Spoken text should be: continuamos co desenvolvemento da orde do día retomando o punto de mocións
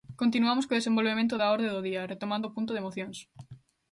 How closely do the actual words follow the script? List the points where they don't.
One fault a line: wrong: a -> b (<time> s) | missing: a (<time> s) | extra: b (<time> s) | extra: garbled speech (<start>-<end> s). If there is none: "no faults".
no faults